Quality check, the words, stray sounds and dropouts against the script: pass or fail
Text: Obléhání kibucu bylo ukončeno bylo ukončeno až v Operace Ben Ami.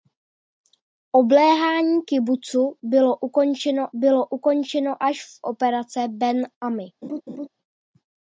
fail